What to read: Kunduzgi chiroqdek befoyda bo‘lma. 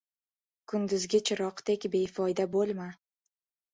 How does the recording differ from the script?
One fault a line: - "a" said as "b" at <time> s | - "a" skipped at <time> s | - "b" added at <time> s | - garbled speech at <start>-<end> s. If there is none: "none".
none